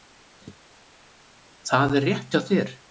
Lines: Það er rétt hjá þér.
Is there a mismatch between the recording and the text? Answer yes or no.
no